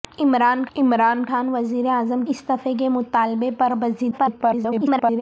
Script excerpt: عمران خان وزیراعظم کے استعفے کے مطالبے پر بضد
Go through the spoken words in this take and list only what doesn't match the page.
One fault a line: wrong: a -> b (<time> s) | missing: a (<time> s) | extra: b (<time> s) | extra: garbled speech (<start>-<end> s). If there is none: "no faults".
extra: عمران (0.8 s)
missing: کے (2.2 s)
extra: garbled speech (4.1-5.2 s)